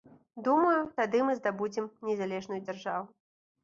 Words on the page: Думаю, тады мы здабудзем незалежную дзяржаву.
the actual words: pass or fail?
pass